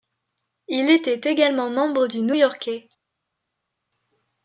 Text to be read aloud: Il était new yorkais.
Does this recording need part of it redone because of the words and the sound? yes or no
yes